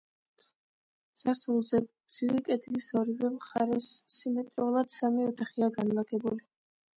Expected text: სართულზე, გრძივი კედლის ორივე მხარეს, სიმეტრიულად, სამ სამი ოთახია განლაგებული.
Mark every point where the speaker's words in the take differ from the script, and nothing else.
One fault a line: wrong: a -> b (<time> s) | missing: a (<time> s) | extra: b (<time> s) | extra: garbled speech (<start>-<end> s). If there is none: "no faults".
missing: სამ (5.0 s)